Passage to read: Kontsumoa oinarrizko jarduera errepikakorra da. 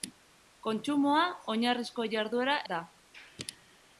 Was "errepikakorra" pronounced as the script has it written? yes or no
no